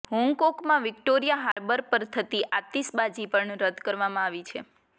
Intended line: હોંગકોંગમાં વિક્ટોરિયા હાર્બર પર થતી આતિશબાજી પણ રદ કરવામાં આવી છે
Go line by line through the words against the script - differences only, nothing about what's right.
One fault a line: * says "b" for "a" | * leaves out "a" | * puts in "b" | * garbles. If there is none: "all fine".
all fine